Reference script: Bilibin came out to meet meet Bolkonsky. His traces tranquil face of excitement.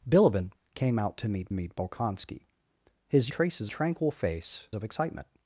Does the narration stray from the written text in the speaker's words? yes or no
no